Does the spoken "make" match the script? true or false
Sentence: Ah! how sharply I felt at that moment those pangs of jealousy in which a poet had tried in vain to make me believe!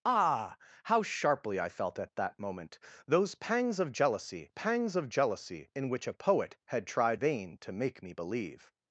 true